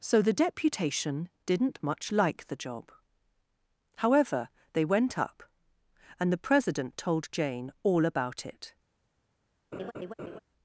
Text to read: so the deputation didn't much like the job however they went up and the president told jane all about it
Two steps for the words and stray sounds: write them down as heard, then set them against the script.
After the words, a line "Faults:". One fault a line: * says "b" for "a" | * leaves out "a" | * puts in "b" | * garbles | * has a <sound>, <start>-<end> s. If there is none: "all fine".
so the deputation didn't much like the job however they went up and the president told jane all about it
Faults:
* has a laugh, 9.7-10.4 s